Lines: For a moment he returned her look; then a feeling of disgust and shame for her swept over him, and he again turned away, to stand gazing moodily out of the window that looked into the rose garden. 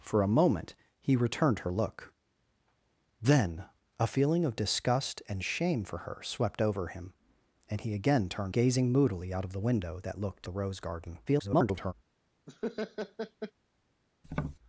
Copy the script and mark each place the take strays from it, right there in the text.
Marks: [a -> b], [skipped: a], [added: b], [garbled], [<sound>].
For a moment he returned her look; then a feeling of disgust and shame for her swept over him, and he again turned [skipped: away, to stand] gazing moodily out of the window that looked [skipped: into] the rose garden. [garbled] [laugh] [tap]